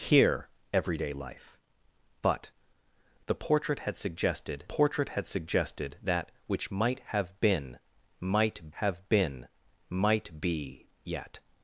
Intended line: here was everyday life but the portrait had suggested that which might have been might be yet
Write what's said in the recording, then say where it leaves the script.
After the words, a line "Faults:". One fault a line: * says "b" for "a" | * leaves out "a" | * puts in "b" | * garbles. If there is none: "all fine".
here everyday life but the portrait had suggested portrait had suggested that which might have been might have been might be yet
Faults:
* leaves out "was"
* puts in "portrait had suggested"
* puts in "have been might"